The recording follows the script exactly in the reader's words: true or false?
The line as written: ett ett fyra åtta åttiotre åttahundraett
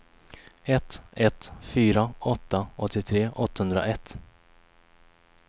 true